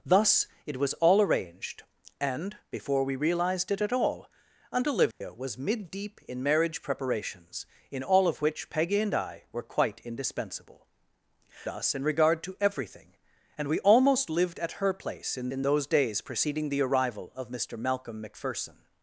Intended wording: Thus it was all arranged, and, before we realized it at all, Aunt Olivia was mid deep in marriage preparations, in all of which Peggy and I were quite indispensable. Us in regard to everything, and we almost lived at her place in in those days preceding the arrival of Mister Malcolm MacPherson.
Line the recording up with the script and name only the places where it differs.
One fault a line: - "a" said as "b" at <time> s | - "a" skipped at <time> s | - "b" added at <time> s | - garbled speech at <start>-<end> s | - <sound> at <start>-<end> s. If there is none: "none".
- dropout at 5.1-5.2 s